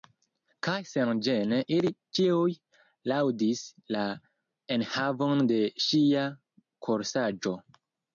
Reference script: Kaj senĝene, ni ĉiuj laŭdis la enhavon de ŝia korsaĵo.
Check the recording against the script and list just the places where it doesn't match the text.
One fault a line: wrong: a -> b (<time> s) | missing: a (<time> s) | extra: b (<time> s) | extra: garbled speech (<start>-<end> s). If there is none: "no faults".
wrong: ni -> ili (1.7 s)